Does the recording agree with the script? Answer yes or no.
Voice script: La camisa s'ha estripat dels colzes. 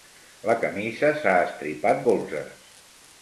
no